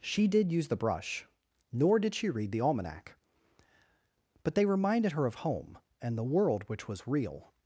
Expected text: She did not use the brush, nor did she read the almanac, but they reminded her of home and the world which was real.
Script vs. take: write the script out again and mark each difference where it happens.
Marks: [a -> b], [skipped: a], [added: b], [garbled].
She did [skipped: not] use the brush, nor did she read the almanac, but they reminded her of home and the world which was real.